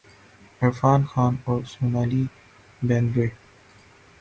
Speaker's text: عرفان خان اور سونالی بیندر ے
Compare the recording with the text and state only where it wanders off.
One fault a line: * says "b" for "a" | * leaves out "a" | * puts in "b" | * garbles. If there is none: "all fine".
all fine